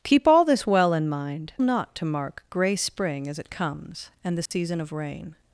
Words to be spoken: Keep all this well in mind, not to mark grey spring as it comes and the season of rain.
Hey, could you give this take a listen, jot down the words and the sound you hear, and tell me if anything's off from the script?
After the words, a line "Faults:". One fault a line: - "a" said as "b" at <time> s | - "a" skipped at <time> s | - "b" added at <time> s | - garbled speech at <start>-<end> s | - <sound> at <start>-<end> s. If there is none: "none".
Keep all this well in mind, not to mark grey spring as it comes and the season of rain.
Faults:
- dropout at 4.5-4.5 s